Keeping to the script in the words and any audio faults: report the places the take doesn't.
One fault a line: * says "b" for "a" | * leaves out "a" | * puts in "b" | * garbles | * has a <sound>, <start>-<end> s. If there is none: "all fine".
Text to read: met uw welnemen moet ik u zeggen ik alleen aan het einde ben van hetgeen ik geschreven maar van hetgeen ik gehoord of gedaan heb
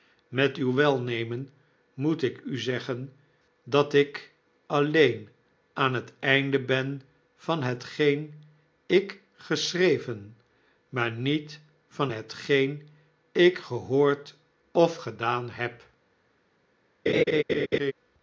* puts in "dat"
* puts in "niet"
* has a laugh, 17.1-17.9 s